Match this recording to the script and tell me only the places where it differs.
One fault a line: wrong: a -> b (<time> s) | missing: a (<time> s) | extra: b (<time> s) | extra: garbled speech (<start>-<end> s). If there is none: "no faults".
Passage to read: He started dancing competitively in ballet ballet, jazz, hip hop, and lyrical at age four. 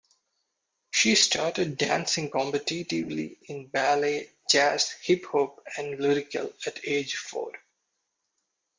wrong: He -> She (0.9 s)
missing: ballet (4.3 s)